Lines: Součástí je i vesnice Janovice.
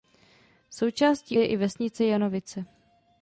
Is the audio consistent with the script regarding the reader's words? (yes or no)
yes